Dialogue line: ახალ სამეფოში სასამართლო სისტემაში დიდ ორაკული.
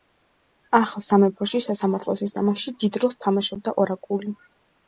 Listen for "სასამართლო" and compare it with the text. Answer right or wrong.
right